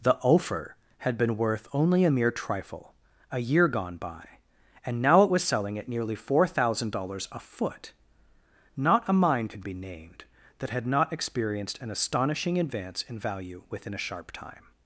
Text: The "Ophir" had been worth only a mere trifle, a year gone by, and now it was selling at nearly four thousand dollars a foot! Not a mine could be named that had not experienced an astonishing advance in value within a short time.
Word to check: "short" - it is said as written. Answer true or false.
false